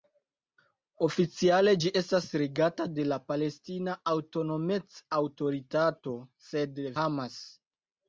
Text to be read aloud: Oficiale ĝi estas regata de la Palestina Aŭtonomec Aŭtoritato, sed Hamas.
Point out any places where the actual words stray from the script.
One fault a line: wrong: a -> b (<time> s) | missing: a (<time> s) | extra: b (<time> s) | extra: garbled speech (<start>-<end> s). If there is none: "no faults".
no faults